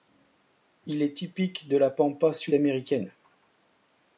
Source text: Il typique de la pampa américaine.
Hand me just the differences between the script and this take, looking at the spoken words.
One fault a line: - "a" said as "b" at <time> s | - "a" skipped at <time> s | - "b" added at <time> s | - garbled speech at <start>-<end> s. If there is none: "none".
- "est" added at 1.0 s
- "sud" added at 2.3 s